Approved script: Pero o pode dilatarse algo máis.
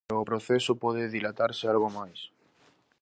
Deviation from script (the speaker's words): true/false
true